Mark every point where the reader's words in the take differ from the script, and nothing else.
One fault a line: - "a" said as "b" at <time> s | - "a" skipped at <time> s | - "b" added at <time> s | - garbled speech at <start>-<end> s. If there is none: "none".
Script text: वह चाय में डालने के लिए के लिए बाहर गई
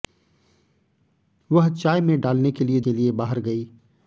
none